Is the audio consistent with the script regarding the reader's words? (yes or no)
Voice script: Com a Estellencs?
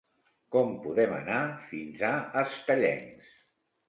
no